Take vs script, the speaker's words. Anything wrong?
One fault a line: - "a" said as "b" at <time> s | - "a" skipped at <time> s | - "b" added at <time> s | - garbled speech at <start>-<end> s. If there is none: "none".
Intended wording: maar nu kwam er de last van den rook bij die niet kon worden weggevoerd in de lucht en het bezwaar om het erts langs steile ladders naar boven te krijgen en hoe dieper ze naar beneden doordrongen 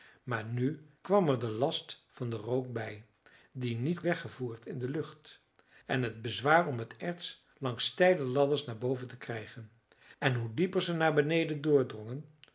- "kon worden" skipped at 4.0 s